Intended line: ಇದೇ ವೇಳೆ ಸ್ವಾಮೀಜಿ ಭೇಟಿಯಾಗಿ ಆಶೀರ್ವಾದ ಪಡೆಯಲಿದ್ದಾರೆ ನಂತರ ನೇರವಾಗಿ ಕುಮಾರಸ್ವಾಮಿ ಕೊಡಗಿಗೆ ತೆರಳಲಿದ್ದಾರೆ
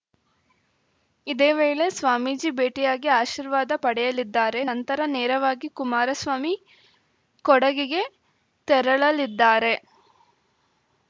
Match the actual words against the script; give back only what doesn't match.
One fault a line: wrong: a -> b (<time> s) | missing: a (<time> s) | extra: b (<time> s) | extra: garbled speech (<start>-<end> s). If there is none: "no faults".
no faults